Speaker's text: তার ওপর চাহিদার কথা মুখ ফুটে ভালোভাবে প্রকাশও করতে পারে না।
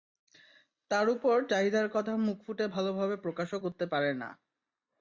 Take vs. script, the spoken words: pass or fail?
pass